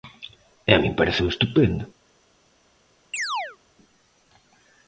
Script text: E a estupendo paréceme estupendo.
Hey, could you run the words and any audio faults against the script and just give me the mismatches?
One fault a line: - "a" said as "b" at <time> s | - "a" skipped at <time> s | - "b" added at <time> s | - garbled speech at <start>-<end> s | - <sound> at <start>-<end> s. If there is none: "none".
- "estupendo" said as "min" at 0.8 s
- chirp at 3.1-3.6 s